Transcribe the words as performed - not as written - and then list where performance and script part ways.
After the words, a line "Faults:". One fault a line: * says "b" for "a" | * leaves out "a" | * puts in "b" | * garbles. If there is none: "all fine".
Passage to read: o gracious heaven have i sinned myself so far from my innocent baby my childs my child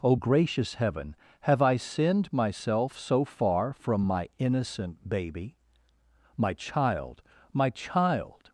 o gracious heaven have i sinned myself so far from my innocent baby my child my child
Faults:
* says "child" for "childs"